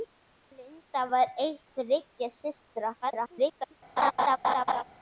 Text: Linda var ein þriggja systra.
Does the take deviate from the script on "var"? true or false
false